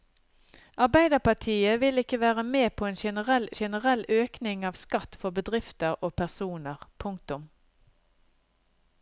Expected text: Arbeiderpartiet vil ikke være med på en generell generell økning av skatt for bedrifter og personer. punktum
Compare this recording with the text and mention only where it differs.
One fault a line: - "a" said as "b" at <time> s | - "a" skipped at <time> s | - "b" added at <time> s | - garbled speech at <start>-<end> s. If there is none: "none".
none